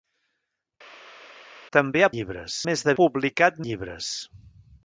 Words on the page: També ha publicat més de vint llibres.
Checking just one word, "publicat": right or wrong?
wrong